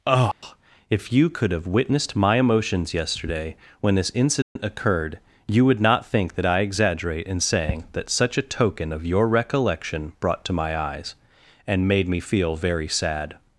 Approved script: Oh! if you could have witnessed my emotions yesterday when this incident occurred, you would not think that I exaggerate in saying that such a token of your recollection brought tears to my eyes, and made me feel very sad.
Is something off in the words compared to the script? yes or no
yes